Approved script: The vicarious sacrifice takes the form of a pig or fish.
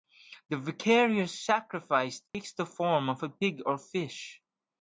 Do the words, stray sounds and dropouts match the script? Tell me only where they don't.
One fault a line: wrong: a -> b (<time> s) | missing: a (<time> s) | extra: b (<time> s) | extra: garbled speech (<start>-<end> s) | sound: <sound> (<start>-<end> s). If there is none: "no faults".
sound: dropout (2.3-2.3 s)